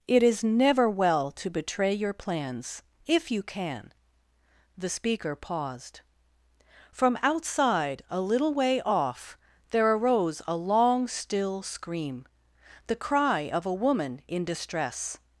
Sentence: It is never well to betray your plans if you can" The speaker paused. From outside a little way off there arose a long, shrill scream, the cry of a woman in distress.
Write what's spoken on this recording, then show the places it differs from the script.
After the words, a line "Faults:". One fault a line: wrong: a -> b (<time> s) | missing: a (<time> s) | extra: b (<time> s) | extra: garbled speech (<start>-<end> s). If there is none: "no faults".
It is never well to betray your plans if you can" The speaker paused. From outside a little way off there arose a long, still scream, the cry of a woman in distress.
Faults:
wrong: shrill -> still (11.1 s)